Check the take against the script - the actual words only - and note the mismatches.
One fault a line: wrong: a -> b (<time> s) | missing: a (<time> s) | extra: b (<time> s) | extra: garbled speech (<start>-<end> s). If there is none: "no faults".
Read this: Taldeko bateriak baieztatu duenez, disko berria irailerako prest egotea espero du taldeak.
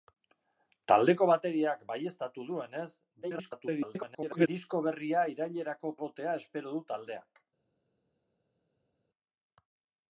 extra: garbled speech (3.2-4.5 s)
missing: prest (6.0 s)